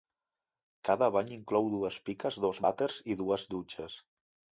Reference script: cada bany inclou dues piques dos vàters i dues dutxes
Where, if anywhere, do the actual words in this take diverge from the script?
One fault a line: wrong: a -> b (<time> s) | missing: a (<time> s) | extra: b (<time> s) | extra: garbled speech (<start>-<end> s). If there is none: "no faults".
no faults